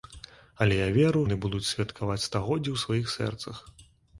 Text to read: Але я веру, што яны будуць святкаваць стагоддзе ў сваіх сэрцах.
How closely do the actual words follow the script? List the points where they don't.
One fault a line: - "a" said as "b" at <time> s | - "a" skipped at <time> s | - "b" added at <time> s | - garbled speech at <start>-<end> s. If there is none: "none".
- "што" skipped at 1.2 s